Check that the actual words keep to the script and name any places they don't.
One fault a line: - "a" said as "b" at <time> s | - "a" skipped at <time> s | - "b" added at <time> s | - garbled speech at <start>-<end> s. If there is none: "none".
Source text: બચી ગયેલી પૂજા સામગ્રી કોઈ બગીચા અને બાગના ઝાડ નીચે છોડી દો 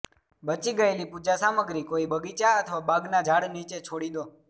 - "અને" said as "અથવા" at 2.6 s